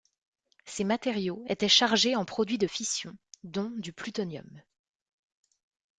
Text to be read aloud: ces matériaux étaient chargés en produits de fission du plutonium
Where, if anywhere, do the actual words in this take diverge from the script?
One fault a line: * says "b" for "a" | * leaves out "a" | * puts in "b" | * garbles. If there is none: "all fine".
* puts in "dont"